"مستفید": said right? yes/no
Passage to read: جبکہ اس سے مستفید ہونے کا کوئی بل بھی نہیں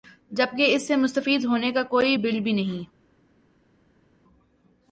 yes